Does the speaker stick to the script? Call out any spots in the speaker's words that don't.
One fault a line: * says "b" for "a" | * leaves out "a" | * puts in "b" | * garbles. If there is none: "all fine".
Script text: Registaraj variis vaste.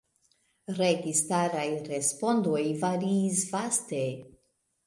* puts in "respondoj"